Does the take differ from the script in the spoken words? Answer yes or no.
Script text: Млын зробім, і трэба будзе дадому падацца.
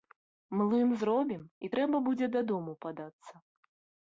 no